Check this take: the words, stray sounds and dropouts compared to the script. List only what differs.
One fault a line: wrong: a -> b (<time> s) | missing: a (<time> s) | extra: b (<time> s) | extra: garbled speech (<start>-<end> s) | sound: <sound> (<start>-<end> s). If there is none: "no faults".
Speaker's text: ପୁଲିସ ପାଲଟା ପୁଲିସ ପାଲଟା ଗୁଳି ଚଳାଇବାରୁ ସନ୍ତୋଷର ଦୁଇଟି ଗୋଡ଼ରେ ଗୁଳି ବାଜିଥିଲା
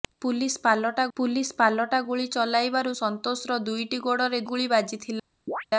sound: chirp (5.5-5.7 s)